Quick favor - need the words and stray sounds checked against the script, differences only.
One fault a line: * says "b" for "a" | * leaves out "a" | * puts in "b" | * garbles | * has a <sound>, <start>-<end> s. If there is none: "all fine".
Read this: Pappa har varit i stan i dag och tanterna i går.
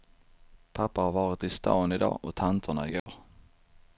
* has a dropout, 3.0-3.1 s